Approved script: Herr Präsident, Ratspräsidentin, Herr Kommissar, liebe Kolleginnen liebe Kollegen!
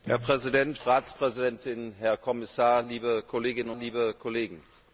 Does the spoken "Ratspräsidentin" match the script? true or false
true